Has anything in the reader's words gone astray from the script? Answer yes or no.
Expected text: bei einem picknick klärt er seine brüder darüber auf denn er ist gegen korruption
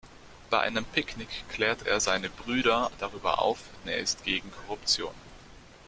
yes